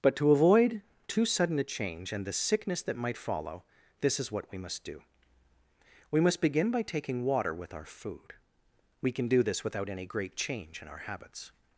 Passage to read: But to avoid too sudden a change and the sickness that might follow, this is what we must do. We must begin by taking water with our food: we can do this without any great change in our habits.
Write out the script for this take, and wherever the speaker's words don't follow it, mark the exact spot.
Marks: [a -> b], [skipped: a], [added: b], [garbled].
But to avoid too sudden a change and the sickness that might follow, this is what we must do. We must begin by taking water with our food: we can do this without any great change in our habits.